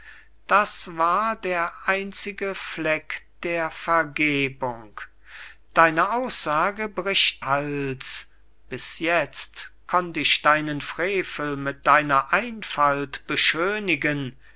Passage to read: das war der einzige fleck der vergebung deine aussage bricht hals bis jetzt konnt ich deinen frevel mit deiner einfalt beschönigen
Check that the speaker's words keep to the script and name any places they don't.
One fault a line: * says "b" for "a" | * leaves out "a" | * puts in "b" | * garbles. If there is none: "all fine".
all fine